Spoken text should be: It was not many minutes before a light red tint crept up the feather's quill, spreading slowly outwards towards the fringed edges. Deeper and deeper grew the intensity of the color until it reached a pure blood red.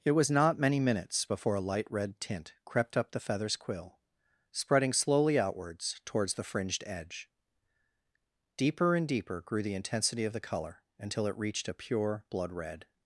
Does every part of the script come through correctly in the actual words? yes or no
no